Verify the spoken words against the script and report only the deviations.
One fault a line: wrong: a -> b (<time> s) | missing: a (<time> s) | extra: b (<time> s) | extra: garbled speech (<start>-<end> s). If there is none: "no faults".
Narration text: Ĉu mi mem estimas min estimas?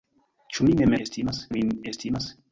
no faults